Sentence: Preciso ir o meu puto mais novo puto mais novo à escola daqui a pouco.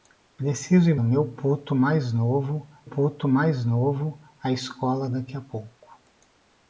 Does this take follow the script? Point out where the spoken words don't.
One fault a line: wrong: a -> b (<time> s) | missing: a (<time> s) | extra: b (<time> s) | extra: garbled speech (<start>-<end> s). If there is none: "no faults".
no faults